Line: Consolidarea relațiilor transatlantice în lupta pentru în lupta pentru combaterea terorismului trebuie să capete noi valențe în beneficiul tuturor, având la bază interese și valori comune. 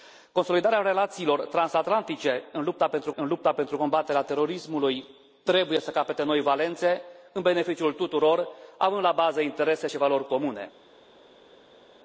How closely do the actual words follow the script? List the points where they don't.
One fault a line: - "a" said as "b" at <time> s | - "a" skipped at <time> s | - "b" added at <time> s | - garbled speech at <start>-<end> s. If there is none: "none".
none